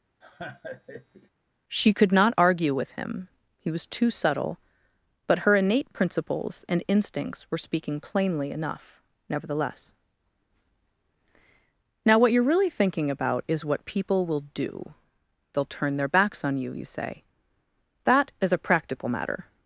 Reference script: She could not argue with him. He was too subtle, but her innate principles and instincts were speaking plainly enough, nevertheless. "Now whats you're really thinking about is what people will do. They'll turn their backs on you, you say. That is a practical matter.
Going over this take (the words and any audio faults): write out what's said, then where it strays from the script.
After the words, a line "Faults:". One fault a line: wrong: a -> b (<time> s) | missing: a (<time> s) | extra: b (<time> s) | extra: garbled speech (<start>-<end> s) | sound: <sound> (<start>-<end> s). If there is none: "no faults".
She could not argue with him. He was too subtle, but her innate principles and instincts were speaking plainly enough, nevertheless. "Now what you're really thinking about is what people will do. They'll turn their backs on you, you say. That is a practical matter.
Faults:
sound: laugh (0.2-1.3 s)
wrong: whats -> what (12.2 s)